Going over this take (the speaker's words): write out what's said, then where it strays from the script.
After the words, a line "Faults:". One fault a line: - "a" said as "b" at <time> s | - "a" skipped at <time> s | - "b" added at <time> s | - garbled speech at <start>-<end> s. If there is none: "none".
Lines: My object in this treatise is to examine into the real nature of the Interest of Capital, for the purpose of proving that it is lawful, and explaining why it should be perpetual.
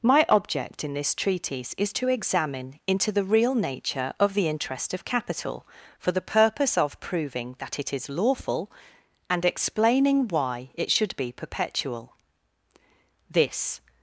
My object in this treatise is to examine into the real nature of the Interest of Capital, for the purpose of proving that it is lawful, and explaining why it should be perpetual. This
Faults:
- "This" added at 13.3 s